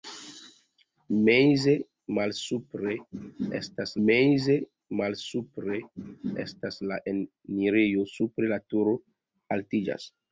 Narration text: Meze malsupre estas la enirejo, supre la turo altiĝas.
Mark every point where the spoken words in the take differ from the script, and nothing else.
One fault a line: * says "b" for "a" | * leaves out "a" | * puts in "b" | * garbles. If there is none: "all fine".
* puts in "meze malsupre estas"